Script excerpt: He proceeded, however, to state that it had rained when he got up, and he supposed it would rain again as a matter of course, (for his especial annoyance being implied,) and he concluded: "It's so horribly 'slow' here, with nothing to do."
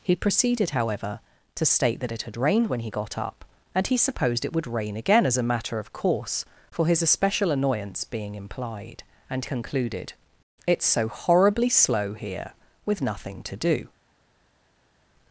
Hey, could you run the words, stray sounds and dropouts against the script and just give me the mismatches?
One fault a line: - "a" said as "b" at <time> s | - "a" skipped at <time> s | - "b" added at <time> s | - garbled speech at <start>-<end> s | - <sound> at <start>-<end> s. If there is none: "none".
- "he" skipped at 9.4 s